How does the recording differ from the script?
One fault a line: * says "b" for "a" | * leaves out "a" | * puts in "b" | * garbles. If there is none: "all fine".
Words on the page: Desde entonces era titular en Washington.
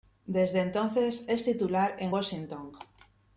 * says "es" for "era"